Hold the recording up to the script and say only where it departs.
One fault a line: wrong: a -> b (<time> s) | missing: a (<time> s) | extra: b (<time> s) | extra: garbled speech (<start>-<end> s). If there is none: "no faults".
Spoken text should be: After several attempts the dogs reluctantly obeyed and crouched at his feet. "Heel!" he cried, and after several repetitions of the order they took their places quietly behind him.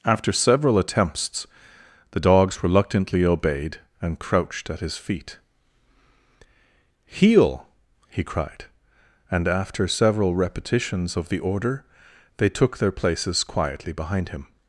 no faults